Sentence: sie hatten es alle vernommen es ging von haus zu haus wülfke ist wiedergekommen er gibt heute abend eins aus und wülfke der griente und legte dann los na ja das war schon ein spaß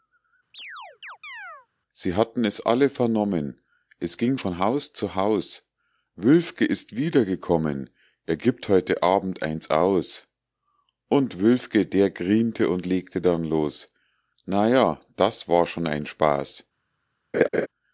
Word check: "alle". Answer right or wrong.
right